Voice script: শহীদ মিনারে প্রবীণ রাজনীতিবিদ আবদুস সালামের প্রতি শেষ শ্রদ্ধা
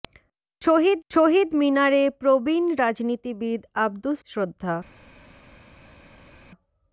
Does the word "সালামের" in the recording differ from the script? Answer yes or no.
yes